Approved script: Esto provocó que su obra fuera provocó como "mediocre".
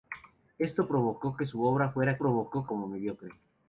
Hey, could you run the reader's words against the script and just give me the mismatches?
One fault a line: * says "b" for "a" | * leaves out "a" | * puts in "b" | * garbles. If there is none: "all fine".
all fine